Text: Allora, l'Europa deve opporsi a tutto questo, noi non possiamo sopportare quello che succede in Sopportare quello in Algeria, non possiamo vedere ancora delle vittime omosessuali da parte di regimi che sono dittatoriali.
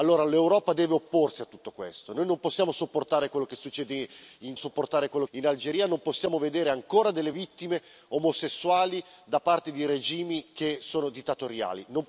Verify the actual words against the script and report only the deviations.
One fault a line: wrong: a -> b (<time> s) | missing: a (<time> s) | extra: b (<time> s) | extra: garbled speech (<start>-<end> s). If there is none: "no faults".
no faults